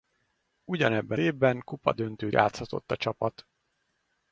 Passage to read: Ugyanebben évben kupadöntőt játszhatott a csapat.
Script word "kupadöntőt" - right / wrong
right